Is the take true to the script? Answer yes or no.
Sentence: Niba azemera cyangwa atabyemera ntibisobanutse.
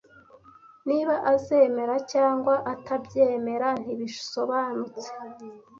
yes